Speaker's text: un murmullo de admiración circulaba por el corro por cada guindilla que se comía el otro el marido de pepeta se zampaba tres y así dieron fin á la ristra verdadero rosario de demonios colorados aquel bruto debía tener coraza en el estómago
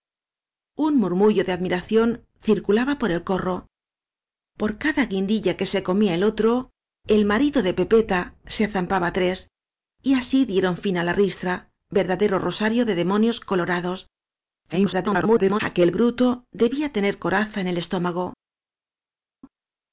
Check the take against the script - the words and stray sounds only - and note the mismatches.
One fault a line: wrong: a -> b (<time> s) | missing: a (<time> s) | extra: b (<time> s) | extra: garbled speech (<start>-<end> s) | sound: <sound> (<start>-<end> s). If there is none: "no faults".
extra: garbled speech (14.7-15.6 s)